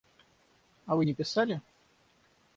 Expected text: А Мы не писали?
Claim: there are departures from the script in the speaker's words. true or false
true